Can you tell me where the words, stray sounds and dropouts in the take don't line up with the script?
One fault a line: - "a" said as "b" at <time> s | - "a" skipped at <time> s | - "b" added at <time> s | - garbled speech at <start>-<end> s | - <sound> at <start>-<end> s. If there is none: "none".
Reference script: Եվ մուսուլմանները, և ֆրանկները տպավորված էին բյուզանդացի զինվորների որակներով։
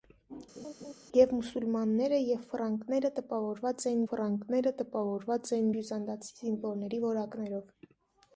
- laugh at 0.6-0.9 s
- "ֆրանկները տպավորված էին" added at 4.1 s